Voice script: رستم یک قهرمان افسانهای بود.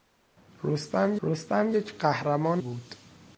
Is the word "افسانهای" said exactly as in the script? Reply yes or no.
no